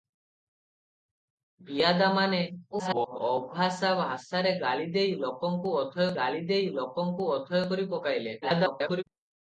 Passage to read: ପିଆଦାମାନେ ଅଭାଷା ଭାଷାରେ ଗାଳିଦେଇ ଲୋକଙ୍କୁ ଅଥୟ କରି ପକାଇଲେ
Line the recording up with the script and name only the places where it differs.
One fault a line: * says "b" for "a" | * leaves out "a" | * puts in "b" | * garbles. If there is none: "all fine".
* garbles
* puts in "ଗାଳିଦେଇ ଲୋକଙ୍କୁ ଅଥୟ"
* garbles